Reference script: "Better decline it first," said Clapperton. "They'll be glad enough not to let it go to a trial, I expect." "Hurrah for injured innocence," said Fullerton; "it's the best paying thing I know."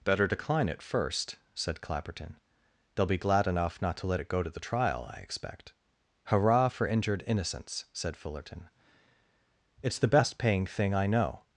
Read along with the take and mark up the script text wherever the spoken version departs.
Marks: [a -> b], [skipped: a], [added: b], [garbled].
"Better decline it first," said Clapperton. "They'll be glad enough not to let it go to [a -> the] trial, I expect." "Hurrah for injured innocence," said Fullerton; "it's the best paying thing I know."